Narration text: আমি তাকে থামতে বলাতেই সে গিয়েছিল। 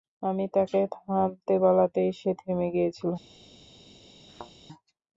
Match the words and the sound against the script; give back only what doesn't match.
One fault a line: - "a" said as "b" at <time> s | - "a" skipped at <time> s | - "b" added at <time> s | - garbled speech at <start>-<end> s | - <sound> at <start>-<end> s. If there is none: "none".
- "থেমে" added at 2.4 s
- thud at 4.3-4.5 s